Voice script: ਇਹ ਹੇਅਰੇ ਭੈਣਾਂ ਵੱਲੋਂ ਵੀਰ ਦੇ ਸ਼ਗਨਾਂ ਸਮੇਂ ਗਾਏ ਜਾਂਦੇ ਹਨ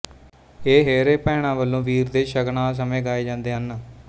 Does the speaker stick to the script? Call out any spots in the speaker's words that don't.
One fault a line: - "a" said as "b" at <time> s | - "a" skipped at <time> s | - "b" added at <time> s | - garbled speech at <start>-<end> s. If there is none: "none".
none